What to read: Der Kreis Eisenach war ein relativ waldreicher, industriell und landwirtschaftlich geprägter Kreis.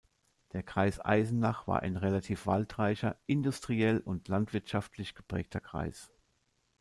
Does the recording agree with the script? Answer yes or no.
yes